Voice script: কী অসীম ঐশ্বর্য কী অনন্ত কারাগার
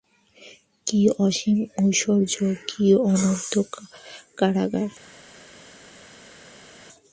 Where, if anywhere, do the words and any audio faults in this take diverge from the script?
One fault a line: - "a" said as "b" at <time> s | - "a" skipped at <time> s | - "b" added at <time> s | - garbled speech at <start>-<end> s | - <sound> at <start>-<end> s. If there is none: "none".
none